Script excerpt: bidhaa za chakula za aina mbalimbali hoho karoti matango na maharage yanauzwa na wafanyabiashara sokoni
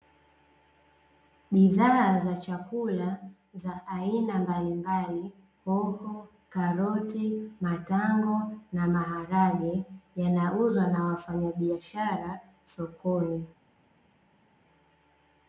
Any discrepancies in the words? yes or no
no